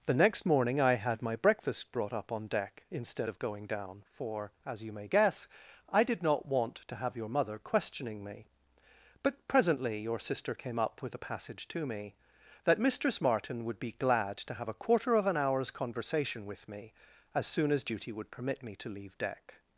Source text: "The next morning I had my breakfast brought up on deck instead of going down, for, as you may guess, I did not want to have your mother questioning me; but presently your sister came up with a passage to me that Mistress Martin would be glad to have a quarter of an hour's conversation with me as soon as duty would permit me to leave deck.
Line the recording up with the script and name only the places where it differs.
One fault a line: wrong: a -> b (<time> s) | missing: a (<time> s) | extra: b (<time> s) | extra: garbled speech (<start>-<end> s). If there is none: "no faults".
no faults